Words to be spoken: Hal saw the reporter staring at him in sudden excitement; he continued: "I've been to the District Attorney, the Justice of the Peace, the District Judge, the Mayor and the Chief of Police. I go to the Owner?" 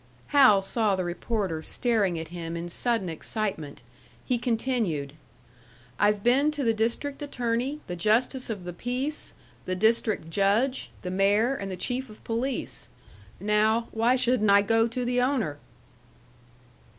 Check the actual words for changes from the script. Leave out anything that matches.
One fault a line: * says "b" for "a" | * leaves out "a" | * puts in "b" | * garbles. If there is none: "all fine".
* puts in "Now why shouldn't"